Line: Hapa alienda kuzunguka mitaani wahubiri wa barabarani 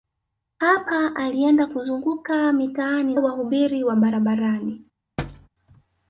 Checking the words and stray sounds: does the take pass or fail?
fail